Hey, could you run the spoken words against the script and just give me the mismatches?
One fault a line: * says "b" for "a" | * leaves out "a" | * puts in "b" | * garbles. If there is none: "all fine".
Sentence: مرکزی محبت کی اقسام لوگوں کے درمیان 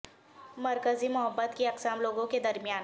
all fine